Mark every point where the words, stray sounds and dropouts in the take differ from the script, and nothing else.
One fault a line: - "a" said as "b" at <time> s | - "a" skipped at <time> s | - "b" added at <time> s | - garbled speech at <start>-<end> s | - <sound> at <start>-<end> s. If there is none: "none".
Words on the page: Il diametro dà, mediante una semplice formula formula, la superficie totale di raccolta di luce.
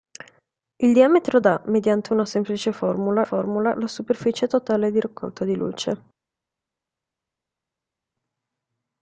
none